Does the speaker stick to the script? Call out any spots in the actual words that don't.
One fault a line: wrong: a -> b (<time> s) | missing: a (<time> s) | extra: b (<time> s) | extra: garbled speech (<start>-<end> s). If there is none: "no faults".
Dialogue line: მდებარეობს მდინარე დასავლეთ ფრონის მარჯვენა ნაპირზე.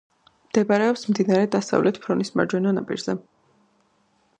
no faults